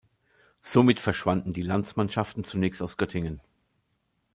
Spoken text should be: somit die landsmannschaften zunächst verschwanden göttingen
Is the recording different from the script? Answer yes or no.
yes